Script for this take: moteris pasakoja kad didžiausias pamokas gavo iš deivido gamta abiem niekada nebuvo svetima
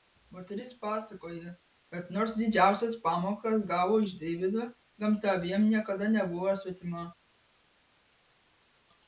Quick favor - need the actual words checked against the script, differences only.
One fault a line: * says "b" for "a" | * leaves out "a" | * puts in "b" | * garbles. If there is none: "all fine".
* puts in "nors"